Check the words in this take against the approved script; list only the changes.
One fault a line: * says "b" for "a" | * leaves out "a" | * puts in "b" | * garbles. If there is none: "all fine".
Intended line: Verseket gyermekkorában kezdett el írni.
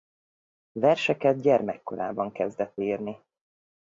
* leaves out "el"